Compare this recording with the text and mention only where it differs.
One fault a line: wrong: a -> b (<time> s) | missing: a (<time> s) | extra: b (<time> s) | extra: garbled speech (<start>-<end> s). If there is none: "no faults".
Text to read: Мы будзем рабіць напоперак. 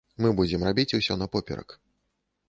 extra: усё (1.0 s)